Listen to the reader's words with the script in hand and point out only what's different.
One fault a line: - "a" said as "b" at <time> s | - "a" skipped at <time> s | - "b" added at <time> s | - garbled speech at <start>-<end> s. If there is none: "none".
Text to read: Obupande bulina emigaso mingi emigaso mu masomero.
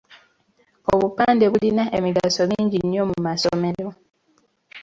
- "emigaso" said as "nnyo" at 2.8 s